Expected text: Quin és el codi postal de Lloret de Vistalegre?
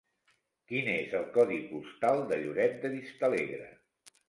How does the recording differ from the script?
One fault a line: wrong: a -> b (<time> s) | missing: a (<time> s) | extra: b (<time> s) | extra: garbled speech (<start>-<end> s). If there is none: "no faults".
no faults